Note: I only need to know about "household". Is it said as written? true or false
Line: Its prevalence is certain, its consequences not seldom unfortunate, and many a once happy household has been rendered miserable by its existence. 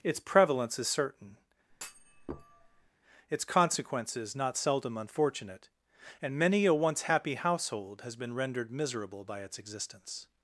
true